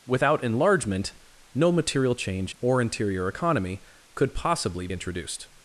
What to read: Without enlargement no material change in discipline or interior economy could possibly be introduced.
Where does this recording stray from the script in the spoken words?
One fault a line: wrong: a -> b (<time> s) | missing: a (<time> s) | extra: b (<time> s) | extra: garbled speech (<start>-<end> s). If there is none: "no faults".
missing: in discipline (2.5 s)
missing: be (4.9 s)